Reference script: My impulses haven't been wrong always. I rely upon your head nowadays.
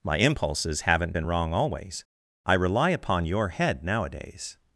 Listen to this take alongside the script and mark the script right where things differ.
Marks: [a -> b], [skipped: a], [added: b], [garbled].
My impulses haven't been wrong always. I rely upon your head nowadays.